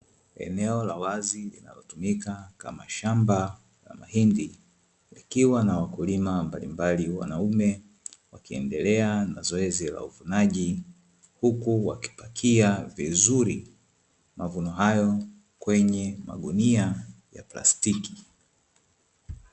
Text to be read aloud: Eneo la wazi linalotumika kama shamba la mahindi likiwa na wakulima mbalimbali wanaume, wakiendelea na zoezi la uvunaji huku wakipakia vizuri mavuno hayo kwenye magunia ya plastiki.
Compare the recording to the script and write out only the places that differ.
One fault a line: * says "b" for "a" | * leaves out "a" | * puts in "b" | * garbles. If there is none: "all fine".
all fine